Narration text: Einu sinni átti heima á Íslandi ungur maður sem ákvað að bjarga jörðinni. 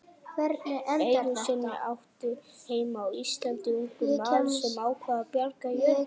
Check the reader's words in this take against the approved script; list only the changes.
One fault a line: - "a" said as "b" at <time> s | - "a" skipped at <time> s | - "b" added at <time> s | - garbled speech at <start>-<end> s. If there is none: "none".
none